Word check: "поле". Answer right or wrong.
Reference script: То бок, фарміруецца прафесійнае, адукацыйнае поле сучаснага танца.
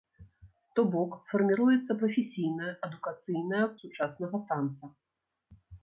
wrong